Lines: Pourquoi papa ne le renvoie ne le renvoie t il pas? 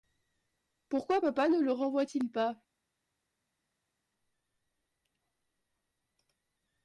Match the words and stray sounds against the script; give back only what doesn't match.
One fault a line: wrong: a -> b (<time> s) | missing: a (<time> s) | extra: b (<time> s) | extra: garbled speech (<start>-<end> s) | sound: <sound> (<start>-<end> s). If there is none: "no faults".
missing: ne le renvoie (2.1 s)